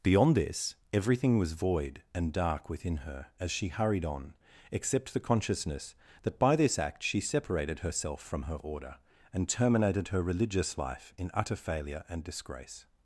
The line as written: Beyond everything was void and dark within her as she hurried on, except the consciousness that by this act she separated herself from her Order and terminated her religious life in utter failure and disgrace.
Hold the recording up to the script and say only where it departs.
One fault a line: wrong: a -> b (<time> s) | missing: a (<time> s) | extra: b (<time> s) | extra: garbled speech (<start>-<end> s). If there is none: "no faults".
extra: this (0.3 s)